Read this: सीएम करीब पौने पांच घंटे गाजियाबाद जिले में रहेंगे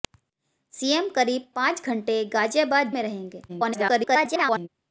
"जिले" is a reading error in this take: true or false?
true